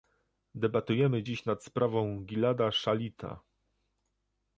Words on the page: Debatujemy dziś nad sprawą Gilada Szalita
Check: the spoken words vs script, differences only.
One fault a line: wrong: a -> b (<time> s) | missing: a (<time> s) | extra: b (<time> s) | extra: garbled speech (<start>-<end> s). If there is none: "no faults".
no faults